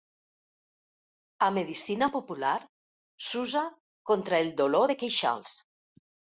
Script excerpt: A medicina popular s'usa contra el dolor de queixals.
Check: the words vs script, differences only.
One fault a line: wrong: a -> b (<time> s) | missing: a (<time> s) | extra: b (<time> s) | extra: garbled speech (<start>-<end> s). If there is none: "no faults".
no faults